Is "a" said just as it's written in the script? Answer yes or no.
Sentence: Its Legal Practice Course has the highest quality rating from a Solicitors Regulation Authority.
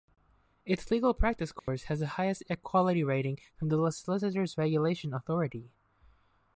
no